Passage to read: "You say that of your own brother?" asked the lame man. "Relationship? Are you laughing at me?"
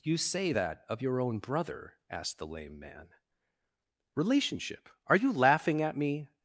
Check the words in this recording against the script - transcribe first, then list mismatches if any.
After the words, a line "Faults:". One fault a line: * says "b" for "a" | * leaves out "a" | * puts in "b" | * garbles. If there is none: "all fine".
"You say that of your own brother?" asked the lame man. "Relationship? Are you laughing at me?"
Faults:
all fine